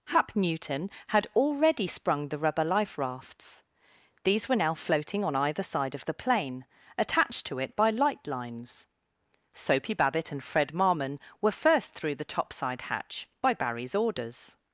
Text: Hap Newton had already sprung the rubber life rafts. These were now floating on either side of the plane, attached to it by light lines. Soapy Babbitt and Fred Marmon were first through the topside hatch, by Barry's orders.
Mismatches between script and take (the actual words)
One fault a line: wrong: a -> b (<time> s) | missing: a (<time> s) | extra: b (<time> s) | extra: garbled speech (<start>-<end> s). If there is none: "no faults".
no faults